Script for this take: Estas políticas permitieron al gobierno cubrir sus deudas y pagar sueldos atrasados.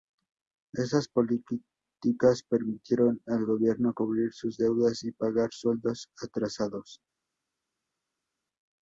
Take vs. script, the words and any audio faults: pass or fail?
pass